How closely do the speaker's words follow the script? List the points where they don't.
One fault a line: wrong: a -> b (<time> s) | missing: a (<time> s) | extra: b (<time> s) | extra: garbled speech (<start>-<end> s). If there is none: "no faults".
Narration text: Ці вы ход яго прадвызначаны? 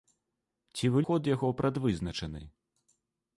no faults